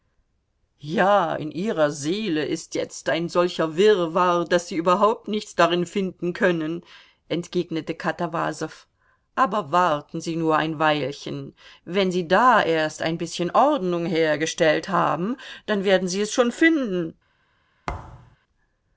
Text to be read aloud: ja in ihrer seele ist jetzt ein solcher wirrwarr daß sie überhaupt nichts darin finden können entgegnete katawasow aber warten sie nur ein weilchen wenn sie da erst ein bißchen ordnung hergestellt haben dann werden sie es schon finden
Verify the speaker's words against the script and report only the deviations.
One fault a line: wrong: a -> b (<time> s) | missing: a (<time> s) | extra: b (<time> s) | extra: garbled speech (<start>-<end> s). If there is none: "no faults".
no faults